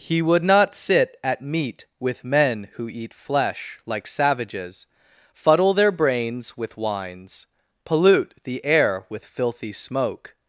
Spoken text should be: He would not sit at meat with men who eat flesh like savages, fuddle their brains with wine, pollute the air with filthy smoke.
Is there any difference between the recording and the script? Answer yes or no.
yes